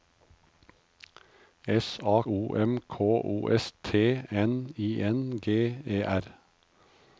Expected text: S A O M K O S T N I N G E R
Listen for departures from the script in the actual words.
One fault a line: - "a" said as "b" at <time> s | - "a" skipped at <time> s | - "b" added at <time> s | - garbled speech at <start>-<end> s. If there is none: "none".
none